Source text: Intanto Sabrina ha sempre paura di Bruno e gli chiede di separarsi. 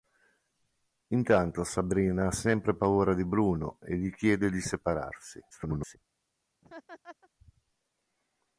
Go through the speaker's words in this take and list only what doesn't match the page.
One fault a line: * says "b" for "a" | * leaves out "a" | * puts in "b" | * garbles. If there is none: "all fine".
* garbles